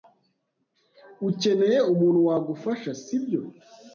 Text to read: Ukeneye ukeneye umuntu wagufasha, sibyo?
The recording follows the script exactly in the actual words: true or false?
false